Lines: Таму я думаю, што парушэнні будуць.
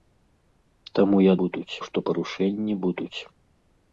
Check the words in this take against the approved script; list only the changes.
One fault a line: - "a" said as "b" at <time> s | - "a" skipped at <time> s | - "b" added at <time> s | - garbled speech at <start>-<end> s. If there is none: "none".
- "думаю" said as "будуць" at 1.4 s